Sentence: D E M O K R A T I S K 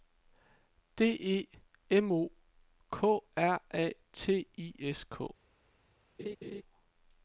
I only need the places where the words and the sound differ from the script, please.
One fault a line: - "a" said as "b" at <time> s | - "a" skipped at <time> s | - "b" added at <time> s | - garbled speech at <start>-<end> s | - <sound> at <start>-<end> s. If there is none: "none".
- laugh at 6.2-6.6 s